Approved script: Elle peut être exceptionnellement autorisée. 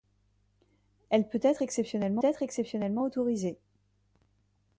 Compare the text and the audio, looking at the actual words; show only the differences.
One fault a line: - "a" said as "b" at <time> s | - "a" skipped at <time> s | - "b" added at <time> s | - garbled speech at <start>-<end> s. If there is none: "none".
- "être exceptionnellement" added at 2.2 s